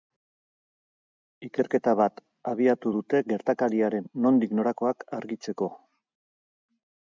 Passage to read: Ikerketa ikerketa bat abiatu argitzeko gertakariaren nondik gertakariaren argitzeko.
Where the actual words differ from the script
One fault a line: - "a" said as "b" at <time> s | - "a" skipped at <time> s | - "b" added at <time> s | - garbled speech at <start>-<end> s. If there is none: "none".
- "ikerketa" skipped at 1.9 s
- "argitzeko" said as "dute" at 2.9 s
- "gertakariaren" said as "norakoak" at 4.6 s